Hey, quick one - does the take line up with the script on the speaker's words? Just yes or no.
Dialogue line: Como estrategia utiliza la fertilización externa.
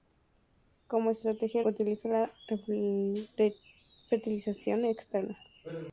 yes